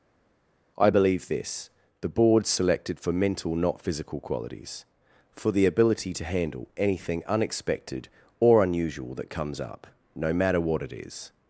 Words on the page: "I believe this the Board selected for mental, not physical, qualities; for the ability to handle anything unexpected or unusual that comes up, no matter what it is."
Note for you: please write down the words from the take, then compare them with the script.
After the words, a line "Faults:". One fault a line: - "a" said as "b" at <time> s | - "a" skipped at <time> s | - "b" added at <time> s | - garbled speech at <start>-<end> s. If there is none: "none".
"I believe this the Board selected for mental, not physical, qualities; for the ability to handle anything unexpected or unusual that comes up, no matter what it is."
Faults:
none